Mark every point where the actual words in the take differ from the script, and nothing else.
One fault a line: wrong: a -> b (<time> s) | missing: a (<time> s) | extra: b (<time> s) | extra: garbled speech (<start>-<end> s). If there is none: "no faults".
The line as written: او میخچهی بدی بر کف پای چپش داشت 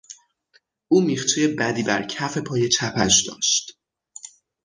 no faults